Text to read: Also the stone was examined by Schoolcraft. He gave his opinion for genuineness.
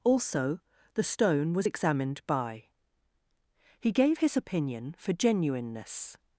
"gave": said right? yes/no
yes